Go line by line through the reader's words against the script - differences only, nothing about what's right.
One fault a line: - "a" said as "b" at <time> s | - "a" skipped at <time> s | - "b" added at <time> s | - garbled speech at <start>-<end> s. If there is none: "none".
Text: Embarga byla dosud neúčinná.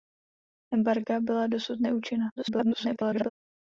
- garbled speech at 2.4-3.3 s